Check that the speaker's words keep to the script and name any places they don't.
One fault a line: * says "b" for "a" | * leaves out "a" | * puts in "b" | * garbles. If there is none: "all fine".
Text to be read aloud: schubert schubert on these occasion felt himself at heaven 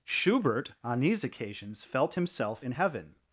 * leaves out "schubert"
* says "occasions" for "occasion"
* says "in" for "at"